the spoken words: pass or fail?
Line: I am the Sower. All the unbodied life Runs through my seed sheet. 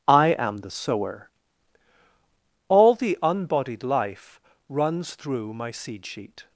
pass